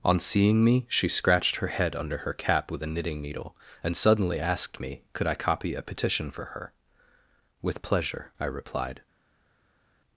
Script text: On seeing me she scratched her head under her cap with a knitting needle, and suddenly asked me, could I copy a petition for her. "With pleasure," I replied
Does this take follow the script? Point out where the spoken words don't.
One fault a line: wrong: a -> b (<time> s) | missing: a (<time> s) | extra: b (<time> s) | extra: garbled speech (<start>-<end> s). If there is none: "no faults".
no faults